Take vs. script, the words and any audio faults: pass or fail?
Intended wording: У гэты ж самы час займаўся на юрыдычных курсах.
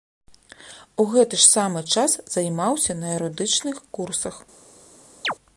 fail